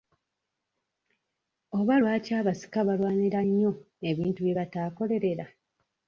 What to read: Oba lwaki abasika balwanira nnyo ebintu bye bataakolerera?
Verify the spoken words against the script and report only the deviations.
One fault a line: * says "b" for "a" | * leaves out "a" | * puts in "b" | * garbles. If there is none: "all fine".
all fine